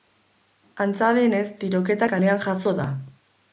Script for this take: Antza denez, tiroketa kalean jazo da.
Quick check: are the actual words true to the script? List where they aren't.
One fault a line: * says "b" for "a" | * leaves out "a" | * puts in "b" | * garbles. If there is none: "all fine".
all fine